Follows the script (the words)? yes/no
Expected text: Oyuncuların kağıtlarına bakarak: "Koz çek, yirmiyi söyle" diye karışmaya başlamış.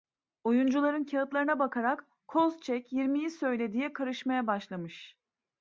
yes